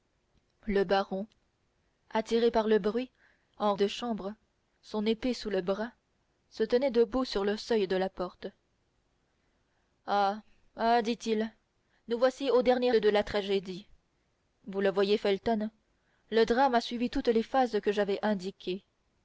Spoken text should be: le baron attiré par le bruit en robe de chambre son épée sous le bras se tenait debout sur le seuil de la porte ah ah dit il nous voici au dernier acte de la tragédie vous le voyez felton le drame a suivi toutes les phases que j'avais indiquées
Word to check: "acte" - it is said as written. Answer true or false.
false